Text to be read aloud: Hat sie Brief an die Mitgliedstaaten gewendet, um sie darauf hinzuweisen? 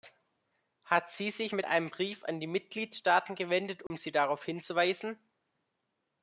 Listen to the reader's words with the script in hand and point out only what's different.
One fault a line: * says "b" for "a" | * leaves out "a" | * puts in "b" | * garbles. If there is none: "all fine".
* puts in "sich mit einem"